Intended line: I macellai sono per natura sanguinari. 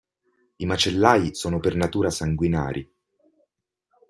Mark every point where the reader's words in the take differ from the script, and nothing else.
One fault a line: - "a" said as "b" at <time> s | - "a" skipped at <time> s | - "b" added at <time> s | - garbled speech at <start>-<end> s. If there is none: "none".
none